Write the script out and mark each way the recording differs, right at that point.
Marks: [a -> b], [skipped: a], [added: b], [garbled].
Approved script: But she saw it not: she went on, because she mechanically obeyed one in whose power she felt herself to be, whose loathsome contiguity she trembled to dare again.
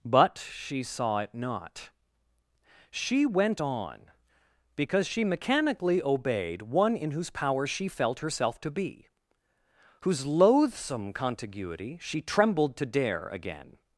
But she saw it not: she went on, because she mechanically obeyed one in whose power she felt herself to be, whose loathsome contiguity she trembled to dare again.